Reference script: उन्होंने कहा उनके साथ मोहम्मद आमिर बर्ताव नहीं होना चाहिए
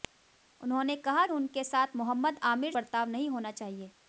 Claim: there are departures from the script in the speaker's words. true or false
false